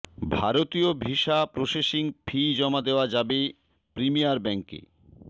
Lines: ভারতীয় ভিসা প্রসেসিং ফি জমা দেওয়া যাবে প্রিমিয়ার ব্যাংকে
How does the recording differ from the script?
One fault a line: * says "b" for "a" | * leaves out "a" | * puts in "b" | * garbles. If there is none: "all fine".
all fine